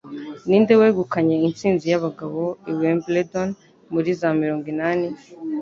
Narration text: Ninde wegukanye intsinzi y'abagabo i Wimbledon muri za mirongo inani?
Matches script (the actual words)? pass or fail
pass